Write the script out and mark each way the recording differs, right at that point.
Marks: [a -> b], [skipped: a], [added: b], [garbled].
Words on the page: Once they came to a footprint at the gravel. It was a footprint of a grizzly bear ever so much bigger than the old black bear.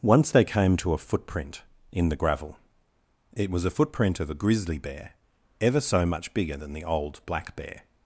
Once they came to a footprint [at -> in] the gravel. It was a footprint of a grizzly bear ever so much bigger than the old black bear.